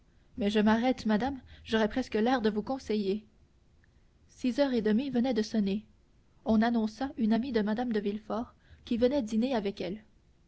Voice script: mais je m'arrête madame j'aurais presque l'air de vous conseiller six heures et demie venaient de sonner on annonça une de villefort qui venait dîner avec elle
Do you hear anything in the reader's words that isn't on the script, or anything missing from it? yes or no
yes